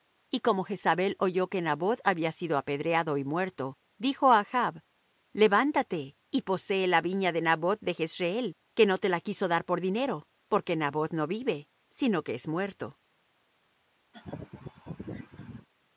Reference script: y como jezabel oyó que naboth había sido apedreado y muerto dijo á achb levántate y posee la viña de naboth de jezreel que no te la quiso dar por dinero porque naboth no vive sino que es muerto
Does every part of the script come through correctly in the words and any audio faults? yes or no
no